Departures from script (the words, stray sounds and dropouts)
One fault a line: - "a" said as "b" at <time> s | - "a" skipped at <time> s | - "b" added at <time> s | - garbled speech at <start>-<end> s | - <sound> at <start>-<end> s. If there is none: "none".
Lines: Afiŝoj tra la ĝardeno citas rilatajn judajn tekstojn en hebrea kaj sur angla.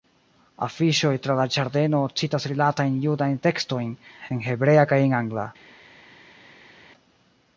- "sur" said as "en" at 5.1 s